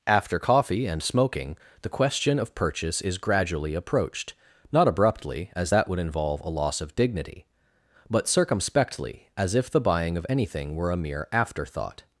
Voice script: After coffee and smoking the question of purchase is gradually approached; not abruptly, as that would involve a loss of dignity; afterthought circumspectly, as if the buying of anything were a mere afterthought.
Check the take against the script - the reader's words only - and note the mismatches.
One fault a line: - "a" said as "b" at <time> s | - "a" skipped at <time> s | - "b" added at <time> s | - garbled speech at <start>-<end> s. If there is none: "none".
- "afterthought" said as "but" at 8.1 s